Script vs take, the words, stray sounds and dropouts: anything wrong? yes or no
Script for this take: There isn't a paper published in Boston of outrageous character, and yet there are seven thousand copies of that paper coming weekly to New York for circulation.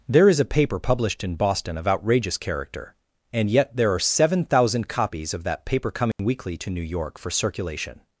yes